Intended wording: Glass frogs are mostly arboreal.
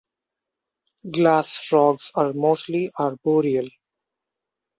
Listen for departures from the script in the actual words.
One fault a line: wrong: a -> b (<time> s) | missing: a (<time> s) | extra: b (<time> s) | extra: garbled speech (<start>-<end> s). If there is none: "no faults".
no faults